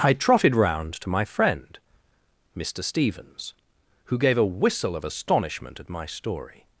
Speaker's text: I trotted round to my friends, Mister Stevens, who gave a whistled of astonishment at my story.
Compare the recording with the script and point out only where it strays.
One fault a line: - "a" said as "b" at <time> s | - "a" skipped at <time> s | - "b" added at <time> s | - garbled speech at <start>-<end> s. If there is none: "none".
- "friends" said as "friend" at 1.2 s
- "whistled" said as "whistle" at 4.5 s